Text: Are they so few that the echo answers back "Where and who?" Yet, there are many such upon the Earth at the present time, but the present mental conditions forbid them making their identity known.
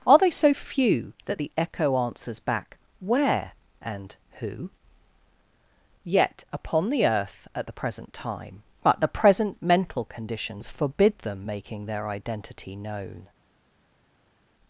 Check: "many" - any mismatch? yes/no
yes